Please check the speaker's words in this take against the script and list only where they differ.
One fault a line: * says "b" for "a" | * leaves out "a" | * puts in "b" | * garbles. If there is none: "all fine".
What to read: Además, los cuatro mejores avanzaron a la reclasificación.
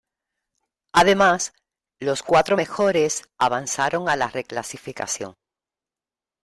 all fine